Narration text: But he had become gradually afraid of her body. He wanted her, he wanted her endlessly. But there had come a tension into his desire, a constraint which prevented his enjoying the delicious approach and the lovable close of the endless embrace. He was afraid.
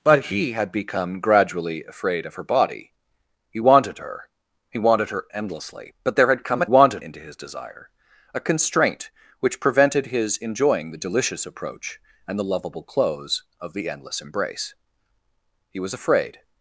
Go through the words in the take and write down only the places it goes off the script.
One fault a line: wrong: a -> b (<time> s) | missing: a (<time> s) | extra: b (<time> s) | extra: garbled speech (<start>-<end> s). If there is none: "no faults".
wrong: tension -> wanted (6.6 s)